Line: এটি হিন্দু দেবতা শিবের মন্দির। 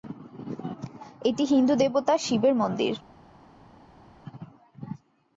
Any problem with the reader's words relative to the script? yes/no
no